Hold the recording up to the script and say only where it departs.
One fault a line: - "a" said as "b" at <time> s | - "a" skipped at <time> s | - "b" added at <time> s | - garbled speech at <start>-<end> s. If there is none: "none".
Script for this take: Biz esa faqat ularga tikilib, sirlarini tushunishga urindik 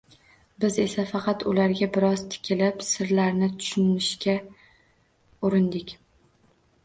- "biroz" added at 2.0 s